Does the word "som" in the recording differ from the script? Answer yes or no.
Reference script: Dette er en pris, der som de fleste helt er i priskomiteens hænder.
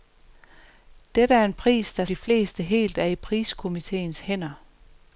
yes